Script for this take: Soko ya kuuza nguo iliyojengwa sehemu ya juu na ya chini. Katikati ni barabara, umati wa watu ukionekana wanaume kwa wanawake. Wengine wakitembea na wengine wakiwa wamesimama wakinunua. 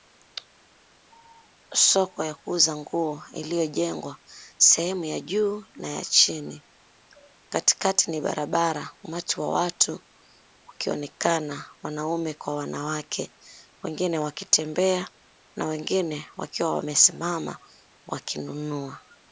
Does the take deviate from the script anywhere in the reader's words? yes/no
no